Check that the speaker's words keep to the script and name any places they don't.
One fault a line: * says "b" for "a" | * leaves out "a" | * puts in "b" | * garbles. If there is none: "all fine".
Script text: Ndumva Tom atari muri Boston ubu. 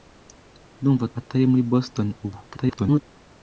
* leaves out "Tom"
* garbles